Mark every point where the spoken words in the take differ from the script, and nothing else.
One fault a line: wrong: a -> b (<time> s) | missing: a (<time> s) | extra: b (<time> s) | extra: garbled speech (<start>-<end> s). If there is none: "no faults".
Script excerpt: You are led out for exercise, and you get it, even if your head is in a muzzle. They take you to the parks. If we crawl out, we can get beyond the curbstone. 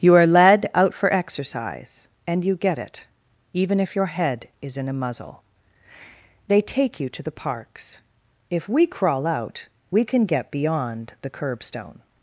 no faults